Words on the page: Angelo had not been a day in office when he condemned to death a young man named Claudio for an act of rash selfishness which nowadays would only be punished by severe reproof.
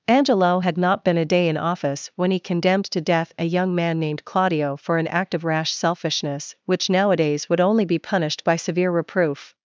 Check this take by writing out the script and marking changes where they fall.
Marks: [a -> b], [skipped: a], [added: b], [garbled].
Angelo had not been a day in office when he condemned to death a young man named Claudio for an act of rash selfishness which nowadays would only be punished by severe reproof.